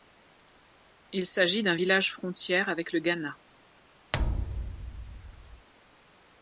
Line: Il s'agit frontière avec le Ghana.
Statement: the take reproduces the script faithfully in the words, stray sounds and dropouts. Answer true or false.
false